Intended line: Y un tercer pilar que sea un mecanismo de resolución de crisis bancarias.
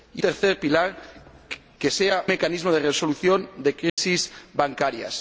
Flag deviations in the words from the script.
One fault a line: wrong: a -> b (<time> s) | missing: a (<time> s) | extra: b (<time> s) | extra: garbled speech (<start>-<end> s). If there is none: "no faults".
missing: un (0.2 s)
missing: un (2.3 s)